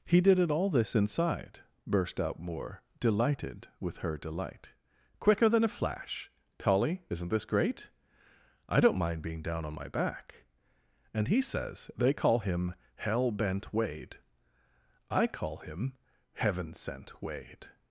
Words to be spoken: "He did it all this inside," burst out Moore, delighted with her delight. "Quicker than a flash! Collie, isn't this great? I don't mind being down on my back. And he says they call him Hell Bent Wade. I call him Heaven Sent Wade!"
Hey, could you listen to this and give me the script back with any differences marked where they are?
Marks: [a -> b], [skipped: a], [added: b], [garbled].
"He did it all this inside," burst out Moore, delighted with her delight. "Quicker than a flash! Collie, isn't this great? I don't mind being down on my back. And he says they call him Hell Bent Wade. I call him Heaven Sent Wade!"